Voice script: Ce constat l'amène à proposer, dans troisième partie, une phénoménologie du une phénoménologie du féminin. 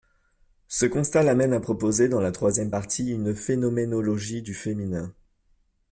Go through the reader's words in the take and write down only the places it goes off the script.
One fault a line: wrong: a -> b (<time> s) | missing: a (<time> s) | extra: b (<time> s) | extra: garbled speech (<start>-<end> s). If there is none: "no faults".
extra: la (2.2 s)
missing: une phénoménologie du (4.5 s)